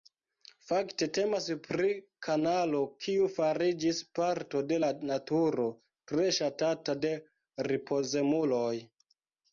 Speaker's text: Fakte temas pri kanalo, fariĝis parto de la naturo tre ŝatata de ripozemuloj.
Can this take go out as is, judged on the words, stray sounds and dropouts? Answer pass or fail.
fail